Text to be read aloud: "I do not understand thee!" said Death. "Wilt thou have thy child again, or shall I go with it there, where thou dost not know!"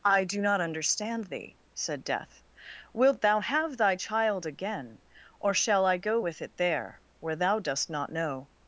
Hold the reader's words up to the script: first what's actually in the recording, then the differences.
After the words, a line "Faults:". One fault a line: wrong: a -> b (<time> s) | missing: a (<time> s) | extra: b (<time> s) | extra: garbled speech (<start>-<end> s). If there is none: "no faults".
"I do not understand thee!" said Death. "Wilt thou have thy child again, or shall I go with it there, where thou dost not know!"
Faults:
no faults